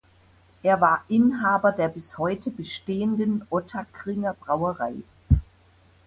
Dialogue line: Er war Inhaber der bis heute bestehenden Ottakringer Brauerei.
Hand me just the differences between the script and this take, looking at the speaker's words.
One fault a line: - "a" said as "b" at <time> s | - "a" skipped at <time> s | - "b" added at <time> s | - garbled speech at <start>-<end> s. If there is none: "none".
none